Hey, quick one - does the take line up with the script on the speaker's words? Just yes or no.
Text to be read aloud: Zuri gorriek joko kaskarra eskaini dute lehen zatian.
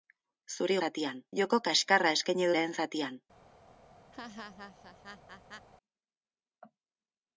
no